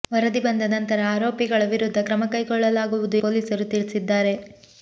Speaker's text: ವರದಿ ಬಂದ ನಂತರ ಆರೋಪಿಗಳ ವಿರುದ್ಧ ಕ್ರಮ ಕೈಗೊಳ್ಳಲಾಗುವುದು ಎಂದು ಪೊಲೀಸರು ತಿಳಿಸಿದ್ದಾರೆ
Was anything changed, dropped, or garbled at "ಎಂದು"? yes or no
yes